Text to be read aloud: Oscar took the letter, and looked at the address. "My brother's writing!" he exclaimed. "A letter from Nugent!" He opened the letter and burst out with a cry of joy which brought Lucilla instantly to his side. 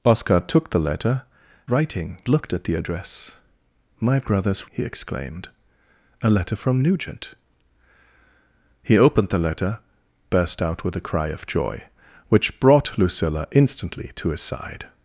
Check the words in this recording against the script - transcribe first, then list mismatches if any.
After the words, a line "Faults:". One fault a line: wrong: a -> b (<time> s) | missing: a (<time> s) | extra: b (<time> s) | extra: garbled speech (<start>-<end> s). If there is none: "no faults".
Oscar took the letter, writing looked at the address. "My brother's!" he exclaimed. "A letter from Nugent!" He opened the letter burst out with a cry of joy which brought Lucilla instantly to his side.
Faults:
wrong: and -> writing (1.7 s)
missing: writing (4.7 s)
missing: and (9.8 s)